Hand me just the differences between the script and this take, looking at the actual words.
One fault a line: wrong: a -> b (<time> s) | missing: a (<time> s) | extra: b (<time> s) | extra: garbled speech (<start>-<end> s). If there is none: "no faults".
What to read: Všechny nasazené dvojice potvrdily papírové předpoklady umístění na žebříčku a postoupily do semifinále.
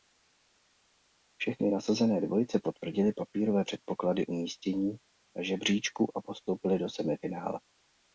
no faults